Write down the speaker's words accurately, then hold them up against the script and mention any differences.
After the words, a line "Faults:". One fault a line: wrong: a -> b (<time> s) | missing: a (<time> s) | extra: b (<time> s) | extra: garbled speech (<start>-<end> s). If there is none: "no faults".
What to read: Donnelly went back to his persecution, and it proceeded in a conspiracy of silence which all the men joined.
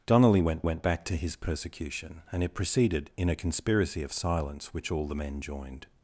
Donnelly went went back to his persecution, and it proceeded in a conspiracy of silence which all the men joined.
Faults:
extra: went (0.6 s)